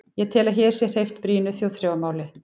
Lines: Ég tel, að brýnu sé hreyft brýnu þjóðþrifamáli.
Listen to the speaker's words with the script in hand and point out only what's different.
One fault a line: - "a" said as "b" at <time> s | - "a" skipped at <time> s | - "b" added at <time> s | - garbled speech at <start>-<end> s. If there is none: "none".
- "brýnu" said as "hér" at 0.6 s